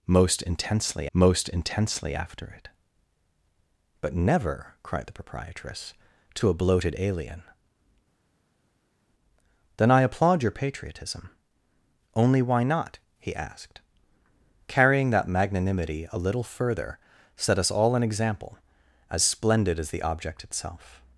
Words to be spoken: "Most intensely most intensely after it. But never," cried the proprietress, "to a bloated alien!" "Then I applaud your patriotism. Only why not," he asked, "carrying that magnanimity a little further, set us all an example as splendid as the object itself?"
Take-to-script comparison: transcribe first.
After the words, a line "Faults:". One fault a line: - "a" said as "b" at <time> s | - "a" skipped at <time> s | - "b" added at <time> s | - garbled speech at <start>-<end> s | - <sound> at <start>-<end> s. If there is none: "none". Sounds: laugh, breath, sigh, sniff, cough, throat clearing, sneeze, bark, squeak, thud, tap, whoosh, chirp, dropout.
"Most intensely most intensely after it. But never," cried the proprietress, "to a bloated alien!" "Then I applaud your patriotism. Only why not," he asked, "carrying that magnanimity a little further, set us all an example as splendid as the object itself?"
Faults:
none